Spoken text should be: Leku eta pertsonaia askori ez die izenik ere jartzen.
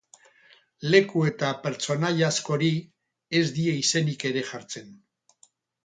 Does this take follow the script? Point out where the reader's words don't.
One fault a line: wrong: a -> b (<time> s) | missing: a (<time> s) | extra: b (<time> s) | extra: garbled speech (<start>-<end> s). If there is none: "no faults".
no faults